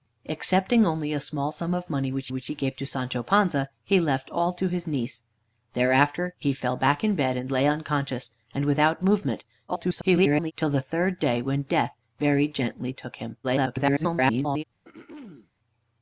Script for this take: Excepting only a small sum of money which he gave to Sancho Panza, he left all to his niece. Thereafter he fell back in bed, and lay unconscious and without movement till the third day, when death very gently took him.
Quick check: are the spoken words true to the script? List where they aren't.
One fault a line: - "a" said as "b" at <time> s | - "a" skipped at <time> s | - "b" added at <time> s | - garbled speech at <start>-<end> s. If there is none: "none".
- "which" added at 2.3 s
- garbled speech at 9.7-10.5 s
- garbled speech at 13.4-14.6 s